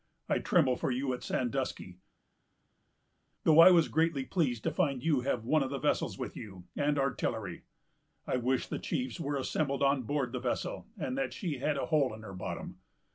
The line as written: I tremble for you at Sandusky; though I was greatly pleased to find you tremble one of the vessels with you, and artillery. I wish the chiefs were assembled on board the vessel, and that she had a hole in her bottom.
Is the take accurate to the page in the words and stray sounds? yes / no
no